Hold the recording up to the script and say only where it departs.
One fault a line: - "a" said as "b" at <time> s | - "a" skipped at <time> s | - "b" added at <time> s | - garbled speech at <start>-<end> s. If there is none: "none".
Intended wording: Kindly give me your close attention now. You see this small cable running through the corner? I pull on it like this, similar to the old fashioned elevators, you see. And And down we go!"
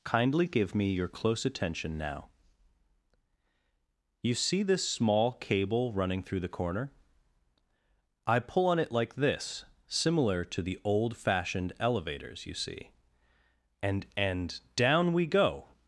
none